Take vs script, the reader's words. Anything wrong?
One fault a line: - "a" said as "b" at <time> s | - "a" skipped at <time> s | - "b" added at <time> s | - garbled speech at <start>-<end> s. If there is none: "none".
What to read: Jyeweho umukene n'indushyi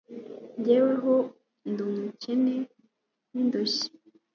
- "ndi" added at 1.7 s